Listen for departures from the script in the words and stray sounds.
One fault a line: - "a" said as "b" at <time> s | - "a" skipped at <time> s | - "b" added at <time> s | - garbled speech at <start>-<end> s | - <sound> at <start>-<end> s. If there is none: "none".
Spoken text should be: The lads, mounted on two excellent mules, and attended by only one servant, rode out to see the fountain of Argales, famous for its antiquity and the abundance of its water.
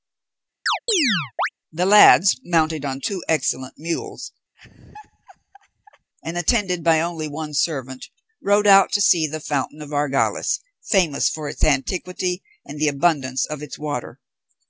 - chirp at 0.7-1.5 s
- laugh at 4.5-6.1 s